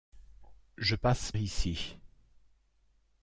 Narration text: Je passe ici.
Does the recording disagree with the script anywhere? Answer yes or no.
no